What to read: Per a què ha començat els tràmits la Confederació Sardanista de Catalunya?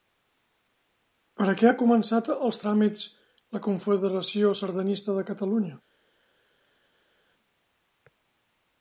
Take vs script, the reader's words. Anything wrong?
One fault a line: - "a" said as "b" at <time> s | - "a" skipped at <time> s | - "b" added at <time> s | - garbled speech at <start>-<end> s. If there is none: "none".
none